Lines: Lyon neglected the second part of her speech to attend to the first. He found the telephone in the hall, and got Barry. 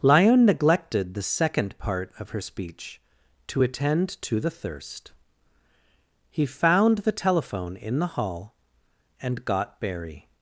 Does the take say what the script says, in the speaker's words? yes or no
no